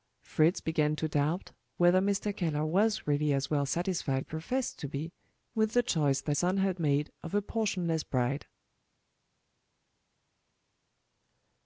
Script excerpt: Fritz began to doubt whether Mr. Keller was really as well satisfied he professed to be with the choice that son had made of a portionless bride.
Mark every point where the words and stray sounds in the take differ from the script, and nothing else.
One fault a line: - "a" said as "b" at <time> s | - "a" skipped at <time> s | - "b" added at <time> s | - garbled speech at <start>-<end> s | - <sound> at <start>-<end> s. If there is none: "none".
none